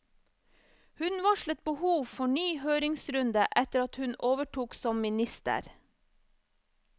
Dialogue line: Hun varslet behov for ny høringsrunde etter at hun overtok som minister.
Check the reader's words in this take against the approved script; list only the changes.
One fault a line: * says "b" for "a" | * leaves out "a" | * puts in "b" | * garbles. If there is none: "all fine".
all fine